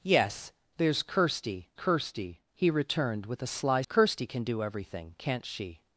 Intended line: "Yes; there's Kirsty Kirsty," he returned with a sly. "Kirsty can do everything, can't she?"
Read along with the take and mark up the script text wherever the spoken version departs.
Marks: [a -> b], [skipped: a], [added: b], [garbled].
"Yes; there's Kirsty Kirsty," he returned with a sly. "Kirsty can do everything, can't she?"